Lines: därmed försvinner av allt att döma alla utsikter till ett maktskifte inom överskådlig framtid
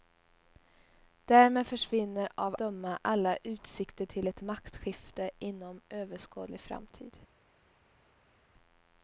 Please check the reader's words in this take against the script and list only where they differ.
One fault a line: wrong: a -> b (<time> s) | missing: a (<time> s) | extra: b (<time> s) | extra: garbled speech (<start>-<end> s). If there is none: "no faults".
missing: allt att (2.5 s)